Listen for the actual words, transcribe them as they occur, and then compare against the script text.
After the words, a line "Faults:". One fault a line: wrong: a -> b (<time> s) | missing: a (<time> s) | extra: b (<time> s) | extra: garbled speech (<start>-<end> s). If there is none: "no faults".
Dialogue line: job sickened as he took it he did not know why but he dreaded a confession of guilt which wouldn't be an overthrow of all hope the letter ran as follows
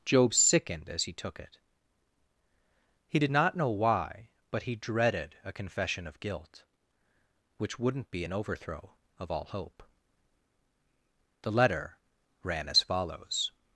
job sickened as he took it he did not know why but he dreaded a confession of guilt which wouldn't be an overthrow of all hope the letter ran as follows
Faults:
no faults